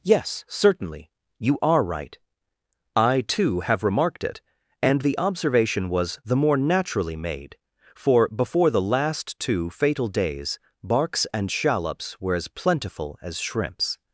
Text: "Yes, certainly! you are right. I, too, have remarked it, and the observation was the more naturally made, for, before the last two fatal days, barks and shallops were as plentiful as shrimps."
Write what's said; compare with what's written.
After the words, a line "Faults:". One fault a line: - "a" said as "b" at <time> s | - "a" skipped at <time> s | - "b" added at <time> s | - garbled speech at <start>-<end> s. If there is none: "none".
"Yes, certainly! you are right. I, too, have remarked it, and the observation was the more naturally made, for, before the last two fatal days, barks and shallops were as plentiful as shrimps."
Faults:
none